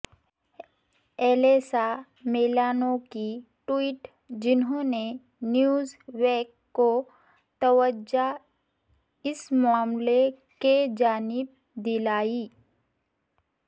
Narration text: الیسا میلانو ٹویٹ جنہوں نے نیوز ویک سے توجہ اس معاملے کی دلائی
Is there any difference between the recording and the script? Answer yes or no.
yes